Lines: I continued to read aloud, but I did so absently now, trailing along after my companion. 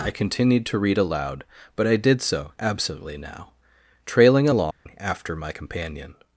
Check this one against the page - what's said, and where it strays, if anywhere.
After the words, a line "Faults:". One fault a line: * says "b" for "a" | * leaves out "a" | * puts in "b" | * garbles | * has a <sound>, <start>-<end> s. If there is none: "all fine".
I continued to read aloud, but I did so absently now, trailing along after my companion.
Faults:
* has a dropout, 4.7-4.9 s